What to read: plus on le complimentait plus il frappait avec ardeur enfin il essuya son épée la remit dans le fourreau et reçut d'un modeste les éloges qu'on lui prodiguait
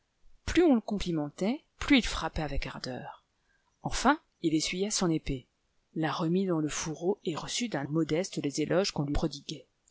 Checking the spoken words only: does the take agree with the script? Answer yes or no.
yes